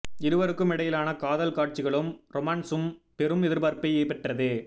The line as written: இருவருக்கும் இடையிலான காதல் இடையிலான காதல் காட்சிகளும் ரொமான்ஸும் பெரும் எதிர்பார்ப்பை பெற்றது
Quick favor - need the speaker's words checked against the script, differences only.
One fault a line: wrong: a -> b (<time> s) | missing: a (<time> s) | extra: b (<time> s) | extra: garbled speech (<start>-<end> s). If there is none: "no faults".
missing: இடையிலான காதல் (1.5 s)